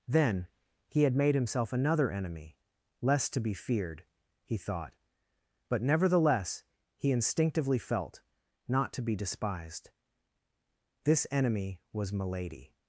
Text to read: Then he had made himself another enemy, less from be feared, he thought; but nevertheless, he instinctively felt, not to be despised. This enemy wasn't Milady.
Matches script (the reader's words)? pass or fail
fail